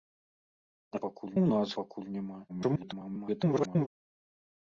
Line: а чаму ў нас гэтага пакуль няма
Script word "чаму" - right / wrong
wrong